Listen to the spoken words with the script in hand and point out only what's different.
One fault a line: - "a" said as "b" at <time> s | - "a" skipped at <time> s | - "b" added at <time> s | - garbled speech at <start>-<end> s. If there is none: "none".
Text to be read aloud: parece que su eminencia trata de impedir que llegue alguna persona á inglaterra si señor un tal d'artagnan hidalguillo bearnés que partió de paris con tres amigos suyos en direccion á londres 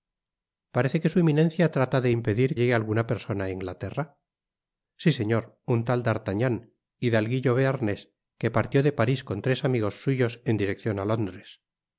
- "que" skipped at 2.6 s